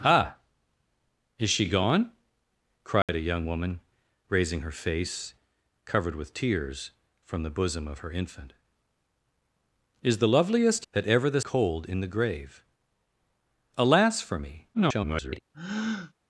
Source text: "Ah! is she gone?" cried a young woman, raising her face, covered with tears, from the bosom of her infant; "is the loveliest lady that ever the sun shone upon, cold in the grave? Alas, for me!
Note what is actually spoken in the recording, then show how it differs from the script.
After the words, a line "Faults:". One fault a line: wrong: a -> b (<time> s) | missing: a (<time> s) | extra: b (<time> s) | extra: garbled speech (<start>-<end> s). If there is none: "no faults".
"Ah! is she gone?" cried a young woman, raising her face, covered with tears, from the bosom of her infant; "is the loveliest that ever the cold in the grave? Alas, for me! [garbled]
Faults:
missing: lady (10.9 s)
missing: sun shone upon (11.4 s)
extra: garbled speech (14.7-15.4 s)